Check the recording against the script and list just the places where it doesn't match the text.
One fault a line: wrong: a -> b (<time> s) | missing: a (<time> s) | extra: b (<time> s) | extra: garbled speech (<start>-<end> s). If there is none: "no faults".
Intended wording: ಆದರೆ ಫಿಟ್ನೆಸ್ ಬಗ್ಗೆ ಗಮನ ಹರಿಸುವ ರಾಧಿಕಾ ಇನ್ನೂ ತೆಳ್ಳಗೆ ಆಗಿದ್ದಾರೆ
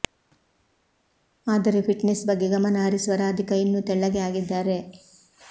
no faults